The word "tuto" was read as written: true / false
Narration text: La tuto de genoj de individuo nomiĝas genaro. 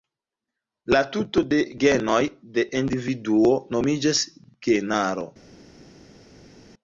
true